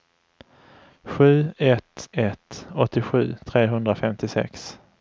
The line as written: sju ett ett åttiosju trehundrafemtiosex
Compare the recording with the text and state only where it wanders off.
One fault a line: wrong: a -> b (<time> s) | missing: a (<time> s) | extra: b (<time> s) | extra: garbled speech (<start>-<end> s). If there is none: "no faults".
no faults